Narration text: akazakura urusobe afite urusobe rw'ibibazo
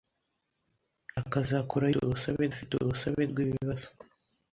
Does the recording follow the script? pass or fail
pass